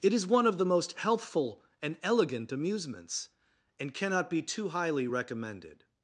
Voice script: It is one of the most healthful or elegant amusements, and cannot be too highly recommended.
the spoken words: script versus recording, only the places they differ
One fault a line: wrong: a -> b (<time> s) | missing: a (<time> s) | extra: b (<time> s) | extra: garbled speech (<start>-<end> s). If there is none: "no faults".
wrong: or -> and (1.8 s)